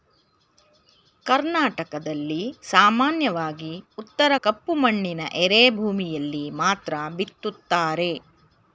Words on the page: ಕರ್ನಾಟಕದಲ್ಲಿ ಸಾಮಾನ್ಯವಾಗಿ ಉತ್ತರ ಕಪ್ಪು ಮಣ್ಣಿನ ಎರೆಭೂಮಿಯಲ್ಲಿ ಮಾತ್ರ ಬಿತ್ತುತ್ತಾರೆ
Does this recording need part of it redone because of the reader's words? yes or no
no